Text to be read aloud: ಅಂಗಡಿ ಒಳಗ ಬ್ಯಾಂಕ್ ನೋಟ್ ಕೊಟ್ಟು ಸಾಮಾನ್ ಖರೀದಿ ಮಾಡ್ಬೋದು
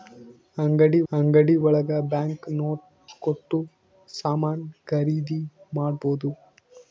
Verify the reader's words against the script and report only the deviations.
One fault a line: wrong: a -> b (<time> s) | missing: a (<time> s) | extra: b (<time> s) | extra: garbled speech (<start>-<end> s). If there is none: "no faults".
extra: ಅಂಗಡಿ (1.1 s)